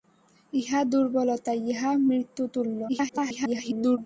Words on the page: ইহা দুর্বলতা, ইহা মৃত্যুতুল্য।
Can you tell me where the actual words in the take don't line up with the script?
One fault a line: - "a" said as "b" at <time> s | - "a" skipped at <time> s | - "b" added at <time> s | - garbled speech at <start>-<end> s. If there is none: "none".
- garbled speech at 2.9-4.0 s